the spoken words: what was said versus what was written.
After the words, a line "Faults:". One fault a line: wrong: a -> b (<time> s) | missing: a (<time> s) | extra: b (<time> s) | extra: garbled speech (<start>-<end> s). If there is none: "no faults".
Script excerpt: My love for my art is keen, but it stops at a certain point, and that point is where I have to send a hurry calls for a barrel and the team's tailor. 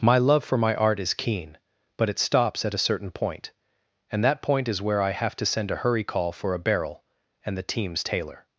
My love for my art is keen, but it stops at a certain point, and that point is where I have to send a hurry call for a barrel and the team's tailor.
Faults:
wrong: calls -> call (6.0 s)